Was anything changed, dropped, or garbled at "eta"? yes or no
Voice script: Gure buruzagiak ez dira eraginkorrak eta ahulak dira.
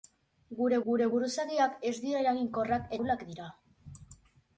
yes